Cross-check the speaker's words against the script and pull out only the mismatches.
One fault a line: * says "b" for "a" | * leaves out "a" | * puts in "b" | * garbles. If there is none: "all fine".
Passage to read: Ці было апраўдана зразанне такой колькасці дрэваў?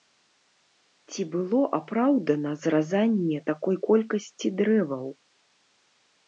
all fine